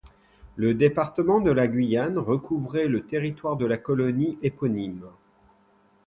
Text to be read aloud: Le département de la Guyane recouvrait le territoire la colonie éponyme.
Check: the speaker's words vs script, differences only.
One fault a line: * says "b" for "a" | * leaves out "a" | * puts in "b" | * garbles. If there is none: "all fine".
* puts in "de"